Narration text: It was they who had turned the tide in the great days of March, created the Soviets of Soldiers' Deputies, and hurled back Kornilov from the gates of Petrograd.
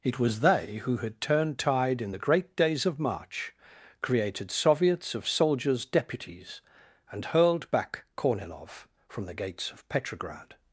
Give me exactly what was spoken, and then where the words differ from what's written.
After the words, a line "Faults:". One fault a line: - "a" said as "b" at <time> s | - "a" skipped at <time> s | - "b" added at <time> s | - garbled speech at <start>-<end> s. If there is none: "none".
It was they who had turned tide in the great days of March, created Soviets of Soldiers' Deputies, and hurled back Kornilov from the gates of Petrograd.
Faults:
- "the" skipped at 1.6 s
- "the" skipped at 4.5 s